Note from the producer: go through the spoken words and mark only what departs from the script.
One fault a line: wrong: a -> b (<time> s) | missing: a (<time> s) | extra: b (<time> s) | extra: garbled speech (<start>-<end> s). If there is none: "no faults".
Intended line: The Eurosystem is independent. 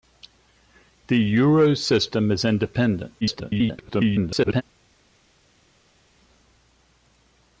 extra: garbled speech (3.2-4.6 s)